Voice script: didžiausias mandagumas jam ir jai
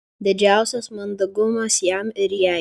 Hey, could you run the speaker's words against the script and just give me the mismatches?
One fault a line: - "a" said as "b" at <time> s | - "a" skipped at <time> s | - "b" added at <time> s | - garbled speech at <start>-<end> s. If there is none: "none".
none